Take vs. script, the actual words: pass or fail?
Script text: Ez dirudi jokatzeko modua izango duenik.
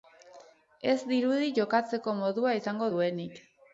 pass